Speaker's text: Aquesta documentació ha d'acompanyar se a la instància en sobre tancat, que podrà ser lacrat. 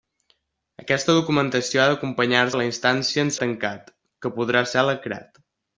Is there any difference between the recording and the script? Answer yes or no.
yes